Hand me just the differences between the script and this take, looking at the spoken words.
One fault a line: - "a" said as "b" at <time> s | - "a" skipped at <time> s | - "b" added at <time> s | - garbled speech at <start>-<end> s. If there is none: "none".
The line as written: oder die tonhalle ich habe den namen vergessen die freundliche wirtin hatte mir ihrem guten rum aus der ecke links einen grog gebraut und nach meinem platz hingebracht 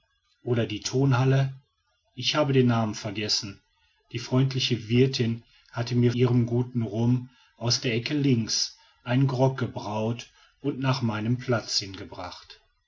none